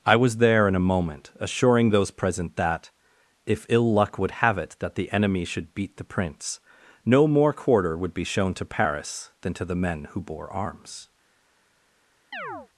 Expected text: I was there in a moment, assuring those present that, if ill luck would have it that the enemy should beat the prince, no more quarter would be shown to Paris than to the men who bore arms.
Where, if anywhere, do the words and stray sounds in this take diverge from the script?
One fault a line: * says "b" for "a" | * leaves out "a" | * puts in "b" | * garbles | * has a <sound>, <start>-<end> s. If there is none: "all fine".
* has a chirp, 12.3-12.7 s